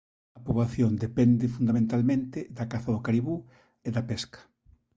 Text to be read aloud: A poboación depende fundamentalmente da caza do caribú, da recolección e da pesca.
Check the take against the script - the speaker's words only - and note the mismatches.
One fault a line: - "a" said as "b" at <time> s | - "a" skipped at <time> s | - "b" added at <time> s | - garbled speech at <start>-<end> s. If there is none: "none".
- "da recolección" skipped at 3.4 s